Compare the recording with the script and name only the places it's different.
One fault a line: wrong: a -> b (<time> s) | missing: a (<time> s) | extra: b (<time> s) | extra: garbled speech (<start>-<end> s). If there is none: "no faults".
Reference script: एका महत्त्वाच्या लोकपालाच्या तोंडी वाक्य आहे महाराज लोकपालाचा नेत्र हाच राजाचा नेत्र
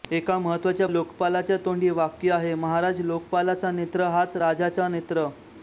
no faults